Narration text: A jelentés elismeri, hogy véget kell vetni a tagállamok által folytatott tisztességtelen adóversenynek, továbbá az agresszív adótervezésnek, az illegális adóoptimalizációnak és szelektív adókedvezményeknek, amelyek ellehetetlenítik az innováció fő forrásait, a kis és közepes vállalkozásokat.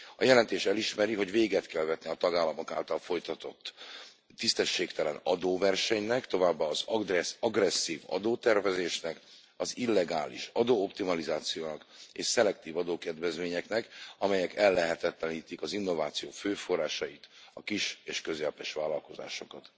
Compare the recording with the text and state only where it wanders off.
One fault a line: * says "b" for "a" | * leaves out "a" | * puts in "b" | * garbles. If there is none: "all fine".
all fine